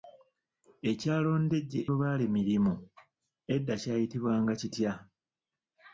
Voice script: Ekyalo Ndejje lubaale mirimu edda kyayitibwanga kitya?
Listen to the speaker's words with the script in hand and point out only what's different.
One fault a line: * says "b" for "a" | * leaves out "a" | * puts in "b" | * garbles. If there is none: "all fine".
all fine